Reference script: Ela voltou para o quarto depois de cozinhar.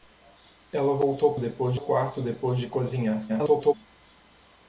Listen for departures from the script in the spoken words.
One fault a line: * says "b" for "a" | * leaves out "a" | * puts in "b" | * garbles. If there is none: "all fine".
* says "depois" for "para"
* garbles